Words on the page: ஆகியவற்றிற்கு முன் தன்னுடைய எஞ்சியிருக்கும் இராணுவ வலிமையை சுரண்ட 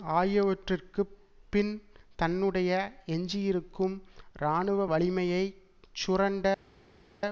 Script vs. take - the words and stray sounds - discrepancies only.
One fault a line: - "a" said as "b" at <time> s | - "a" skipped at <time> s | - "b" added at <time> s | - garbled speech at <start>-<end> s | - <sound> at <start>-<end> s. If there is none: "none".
- "முன்" said as "பின்" at 1.5 s